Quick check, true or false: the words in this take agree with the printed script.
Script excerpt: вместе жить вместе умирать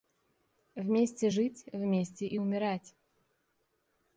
false